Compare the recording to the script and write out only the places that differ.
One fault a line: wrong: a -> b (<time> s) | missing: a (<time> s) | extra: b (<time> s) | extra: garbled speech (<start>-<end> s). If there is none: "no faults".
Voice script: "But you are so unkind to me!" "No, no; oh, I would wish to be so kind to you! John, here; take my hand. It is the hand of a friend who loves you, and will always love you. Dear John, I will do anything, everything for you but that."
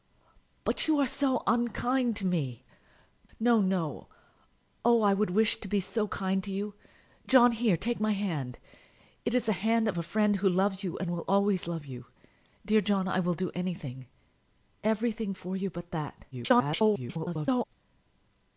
extra: garbled speech (16.3-17.6 s)